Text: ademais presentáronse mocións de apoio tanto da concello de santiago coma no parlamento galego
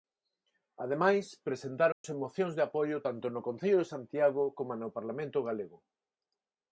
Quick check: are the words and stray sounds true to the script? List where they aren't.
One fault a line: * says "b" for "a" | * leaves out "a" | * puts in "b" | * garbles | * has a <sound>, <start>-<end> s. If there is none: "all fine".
* has a dropout, 1.9-2.0 s
* says "no" for "da"